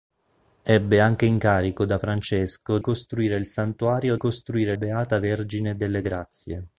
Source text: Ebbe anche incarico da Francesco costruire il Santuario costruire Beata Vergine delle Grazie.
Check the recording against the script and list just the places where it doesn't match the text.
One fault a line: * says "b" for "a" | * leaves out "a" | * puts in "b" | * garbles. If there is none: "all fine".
all fine